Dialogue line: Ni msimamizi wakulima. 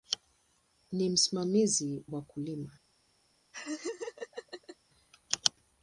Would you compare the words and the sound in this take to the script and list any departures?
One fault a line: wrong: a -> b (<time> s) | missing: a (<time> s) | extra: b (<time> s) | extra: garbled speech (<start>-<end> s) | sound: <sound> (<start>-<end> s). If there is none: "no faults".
sound: laugh (3.5-4.8 s)